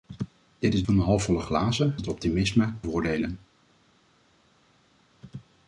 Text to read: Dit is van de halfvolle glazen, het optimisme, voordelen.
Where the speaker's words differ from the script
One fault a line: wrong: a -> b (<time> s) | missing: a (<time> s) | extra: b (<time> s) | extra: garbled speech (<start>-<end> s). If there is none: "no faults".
no faults